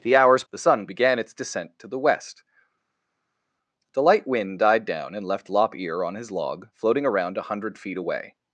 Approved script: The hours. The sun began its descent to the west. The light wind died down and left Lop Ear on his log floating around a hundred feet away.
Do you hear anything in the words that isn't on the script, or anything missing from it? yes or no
no